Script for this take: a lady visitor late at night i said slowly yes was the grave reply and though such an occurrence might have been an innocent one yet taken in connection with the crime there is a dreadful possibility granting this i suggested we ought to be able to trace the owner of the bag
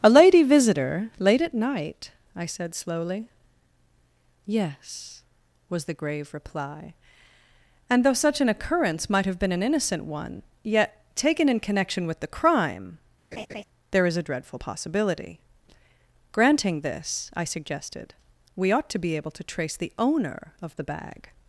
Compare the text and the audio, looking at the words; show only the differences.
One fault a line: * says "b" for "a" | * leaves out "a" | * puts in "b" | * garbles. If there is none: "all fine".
all fine